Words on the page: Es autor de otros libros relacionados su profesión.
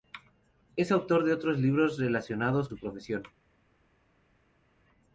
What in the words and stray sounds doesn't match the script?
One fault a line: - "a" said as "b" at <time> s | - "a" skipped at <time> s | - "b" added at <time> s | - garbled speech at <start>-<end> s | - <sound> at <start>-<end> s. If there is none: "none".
none